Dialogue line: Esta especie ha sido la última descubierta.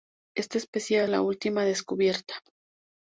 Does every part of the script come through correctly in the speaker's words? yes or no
no